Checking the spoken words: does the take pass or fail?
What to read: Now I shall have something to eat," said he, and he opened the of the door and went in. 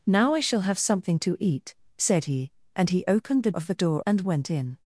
pass